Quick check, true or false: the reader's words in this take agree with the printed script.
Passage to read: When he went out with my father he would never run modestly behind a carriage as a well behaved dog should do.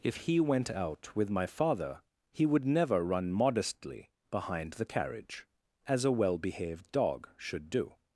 false